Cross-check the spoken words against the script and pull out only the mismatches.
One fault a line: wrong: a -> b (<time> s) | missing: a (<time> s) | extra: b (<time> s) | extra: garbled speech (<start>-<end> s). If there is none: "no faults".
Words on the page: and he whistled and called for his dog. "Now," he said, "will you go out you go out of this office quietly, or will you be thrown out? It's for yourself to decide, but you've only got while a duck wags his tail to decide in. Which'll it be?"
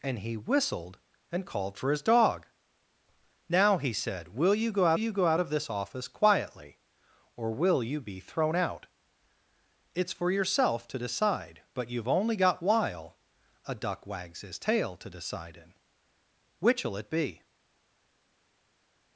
no faults